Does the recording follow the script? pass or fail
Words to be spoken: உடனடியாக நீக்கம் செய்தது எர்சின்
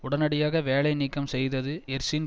fail